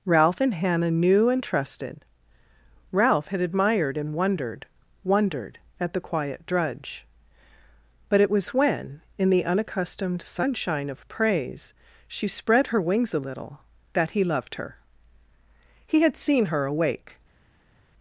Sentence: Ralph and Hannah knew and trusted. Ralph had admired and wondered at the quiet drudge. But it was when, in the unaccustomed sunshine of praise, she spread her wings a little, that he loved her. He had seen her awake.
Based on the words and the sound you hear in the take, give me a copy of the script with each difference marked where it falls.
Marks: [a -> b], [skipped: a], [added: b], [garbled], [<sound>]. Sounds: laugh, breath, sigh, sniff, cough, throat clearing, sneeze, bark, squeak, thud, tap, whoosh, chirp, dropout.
Ralph and Hannah knew and trusted. Ralph had admired and wondered [added: wondered] at the quiet drudge. But it was when, in the unaccustomed sunshine of praise, she spread her wings a little, that he loved her. He had seen her awake.